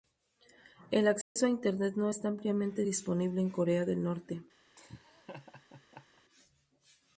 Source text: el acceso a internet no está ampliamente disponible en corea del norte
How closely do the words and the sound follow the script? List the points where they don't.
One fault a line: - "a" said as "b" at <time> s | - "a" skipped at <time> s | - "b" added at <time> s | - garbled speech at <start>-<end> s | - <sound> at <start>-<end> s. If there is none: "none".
- dropout at 1.2-1.4 s
- laugh at 4.8-6.2 s